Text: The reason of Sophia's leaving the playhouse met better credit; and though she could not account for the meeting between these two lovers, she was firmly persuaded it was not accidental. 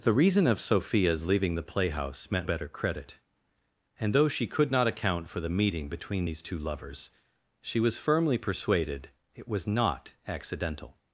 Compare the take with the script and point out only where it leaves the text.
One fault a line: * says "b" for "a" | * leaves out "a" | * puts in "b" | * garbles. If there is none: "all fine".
all fine